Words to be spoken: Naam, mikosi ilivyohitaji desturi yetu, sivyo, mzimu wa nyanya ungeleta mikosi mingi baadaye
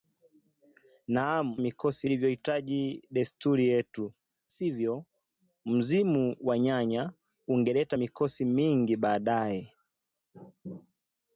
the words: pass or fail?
pass